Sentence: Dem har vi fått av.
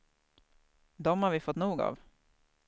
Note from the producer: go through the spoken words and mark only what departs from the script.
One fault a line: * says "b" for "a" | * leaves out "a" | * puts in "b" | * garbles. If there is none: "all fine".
* puts in "nog"